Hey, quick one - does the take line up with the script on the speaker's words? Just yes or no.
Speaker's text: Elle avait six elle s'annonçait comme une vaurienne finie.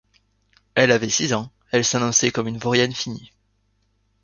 no